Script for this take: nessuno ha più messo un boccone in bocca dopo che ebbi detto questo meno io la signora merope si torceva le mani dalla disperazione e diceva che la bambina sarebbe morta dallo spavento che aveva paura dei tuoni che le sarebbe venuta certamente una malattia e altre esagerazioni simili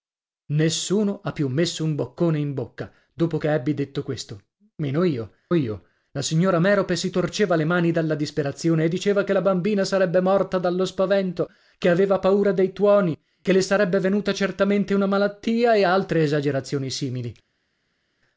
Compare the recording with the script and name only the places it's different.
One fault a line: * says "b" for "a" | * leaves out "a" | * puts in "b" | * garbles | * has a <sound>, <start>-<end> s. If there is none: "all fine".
* puts in "io"